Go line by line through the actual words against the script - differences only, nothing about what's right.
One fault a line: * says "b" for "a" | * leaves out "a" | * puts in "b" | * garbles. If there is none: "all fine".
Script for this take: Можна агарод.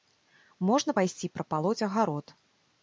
* puts in "пайсці прапалоць"